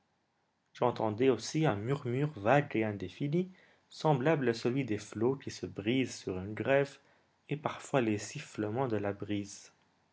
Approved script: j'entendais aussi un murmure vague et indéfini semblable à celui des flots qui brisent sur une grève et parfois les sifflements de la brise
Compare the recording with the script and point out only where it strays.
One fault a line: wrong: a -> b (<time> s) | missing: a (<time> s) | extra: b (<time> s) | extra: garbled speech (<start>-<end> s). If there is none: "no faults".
extra: se (5.5 s)